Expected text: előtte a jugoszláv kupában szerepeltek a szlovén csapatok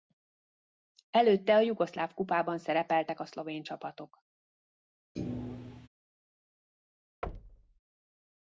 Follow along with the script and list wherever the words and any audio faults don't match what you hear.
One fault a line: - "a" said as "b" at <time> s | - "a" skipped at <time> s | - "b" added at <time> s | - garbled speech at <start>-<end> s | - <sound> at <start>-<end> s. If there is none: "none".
- thud at 5.2-5.9 s
- thud at 7.2-7.8 s